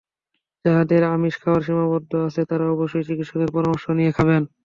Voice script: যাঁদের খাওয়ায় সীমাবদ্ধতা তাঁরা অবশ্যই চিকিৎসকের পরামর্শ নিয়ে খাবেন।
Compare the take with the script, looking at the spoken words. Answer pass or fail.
fail